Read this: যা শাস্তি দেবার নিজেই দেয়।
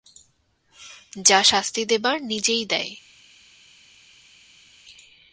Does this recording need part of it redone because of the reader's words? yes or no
no